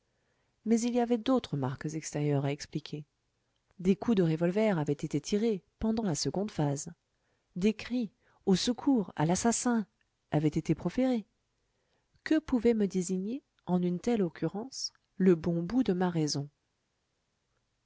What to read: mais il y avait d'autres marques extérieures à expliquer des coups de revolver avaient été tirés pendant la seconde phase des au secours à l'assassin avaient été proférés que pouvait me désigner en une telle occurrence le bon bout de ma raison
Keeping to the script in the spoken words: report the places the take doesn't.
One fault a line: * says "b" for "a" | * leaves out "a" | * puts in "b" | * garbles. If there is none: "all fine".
* puts in "cris"